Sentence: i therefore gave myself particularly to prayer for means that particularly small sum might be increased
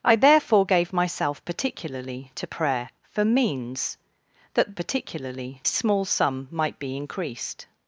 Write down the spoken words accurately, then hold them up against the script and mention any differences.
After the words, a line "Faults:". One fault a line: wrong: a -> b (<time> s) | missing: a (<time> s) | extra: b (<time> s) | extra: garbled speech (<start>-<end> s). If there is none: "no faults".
i therefore gave myself particularly to prayer for means that particularly small sum might be increased
Faults:
no faults